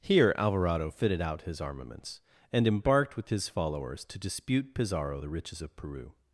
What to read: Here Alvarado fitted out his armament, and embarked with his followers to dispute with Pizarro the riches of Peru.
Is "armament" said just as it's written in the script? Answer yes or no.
no